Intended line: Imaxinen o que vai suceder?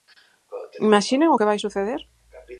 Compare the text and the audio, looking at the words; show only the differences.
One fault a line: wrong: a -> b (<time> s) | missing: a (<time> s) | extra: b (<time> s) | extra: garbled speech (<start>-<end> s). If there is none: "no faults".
no faults